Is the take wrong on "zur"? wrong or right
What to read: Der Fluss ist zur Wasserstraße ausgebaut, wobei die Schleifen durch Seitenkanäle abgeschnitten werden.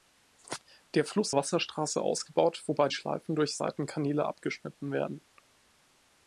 wrong